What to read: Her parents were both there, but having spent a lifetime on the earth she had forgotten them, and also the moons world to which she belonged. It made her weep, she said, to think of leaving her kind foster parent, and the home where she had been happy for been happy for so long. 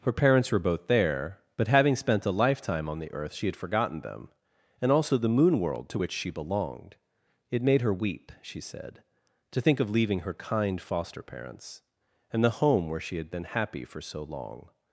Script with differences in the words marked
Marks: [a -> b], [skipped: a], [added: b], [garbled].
Her parents were both there, but having spent a lifetime on the earth she had forgotten them, and also the [moons -> moon] world to which she belonged. It made her weep, she said, to think of leaving her kind foster [parent, -> parents] and the home where she had been happy for [skipped: been happy for] so long.